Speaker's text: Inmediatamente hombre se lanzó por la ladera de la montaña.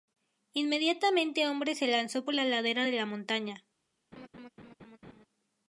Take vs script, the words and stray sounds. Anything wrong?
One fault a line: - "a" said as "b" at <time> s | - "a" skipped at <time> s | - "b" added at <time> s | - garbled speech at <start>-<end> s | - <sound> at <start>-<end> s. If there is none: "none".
- laugh at 4.1-5.3 s